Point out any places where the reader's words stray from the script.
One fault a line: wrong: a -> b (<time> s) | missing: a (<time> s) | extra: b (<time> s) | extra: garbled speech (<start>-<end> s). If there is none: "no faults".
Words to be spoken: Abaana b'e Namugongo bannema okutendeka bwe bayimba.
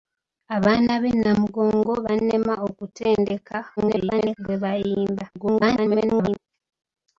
extra: garbled speech (3.8-4.4 s)
extra: garbled speech (5.3-6.4 s)